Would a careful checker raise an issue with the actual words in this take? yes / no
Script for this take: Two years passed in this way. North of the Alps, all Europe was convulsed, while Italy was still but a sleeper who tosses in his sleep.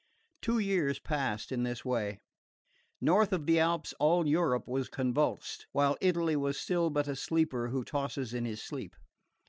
no